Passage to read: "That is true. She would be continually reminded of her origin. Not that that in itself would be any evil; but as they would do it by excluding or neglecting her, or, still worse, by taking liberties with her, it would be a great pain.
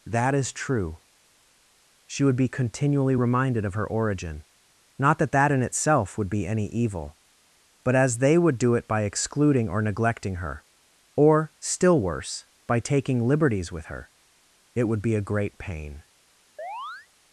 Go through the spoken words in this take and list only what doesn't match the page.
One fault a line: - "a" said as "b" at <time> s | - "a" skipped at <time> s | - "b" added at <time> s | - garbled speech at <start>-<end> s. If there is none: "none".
none